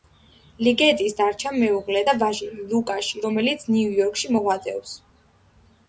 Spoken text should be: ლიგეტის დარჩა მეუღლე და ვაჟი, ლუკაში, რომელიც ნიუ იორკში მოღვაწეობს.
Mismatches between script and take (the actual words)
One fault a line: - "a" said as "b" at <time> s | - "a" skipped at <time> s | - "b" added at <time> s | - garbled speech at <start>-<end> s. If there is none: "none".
none